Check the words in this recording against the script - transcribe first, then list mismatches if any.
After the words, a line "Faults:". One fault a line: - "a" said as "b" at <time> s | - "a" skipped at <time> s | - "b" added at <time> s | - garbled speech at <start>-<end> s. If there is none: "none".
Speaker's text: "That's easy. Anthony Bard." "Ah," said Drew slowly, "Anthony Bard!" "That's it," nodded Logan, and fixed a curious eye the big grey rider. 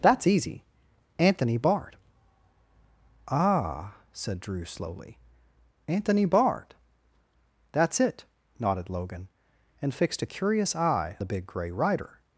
"That's easy. Anthony Bard." "Ah," said Drew slowly, "Anthony Bard!" "That's it," nodded Logan, and fixed a curious eye the big grey rider.
Faults:
none